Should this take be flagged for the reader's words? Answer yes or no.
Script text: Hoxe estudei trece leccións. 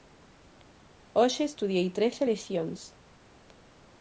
no